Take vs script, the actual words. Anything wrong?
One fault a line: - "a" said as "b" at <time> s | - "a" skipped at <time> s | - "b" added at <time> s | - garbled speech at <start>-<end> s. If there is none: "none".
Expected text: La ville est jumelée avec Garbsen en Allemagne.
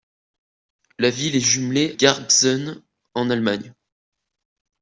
- "avec" skipped at 1.9 s